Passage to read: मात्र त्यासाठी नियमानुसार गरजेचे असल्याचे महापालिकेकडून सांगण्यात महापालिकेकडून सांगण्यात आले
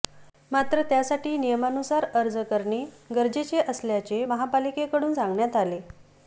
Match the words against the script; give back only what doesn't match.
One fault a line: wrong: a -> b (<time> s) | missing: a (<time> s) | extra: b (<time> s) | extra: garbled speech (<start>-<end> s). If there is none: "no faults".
extra: अर्ज करणे (2.1 s)
missing: महापालिकेकडून सांगण्यात (5.5 s)